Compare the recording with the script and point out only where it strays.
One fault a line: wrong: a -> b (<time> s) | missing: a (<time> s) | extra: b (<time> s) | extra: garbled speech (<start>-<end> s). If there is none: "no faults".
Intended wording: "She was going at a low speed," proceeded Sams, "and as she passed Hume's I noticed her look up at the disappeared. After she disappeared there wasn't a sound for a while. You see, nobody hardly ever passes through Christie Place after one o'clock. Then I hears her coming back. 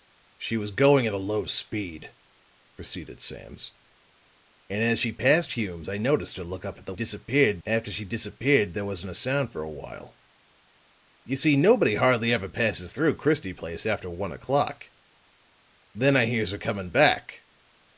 no faults